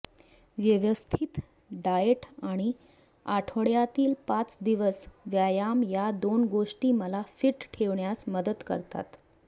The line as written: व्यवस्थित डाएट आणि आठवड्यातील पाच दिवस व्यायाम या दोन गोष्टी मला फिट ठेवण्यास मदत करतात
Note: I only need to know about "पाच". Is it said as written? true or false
true